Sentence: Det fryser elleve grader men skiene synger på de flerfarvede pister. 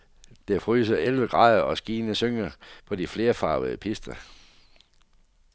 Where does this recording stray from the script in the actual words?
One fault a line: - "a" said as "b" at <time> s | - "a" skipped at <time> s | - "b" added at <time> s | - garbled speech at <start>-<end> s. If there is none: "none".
- "men" said as "og" at 1.6 s